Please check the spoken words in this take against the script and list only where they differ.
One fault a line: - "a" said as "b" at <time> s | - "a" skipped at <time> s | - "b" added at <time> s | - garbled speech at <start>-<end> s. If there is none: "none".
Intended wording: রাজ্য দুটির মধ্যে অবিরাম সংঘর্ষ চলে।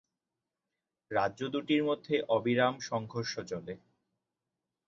none